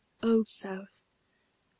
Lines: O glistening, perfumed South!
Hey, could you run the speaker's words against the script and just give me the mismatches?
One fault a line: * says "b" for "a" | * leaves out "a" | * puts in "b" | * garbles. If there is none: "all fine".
* leaves out "glistening perfumed"